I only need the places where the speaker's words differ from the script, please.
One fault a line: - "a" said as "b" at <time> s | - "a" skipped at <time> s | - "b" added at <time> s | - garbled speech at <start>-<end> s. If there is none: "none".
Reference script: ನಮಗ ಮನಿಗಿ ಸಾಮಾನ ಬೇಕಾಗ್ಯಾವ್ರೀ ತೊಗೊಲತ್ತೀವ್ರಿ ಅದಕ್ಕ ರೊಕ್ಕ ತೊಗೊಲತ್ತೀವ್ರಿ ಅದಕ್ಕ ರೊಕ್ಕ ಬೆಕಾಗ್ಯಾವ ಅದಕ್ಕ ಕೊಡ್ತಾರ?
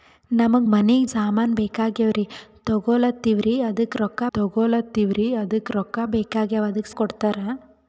none